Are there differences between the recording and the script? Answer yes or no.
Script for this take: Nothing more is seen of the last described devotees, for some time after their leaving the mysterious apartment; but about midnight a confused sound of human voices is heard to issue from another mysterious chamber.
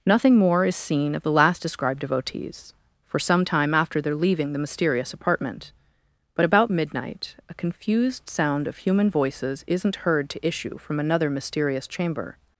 yes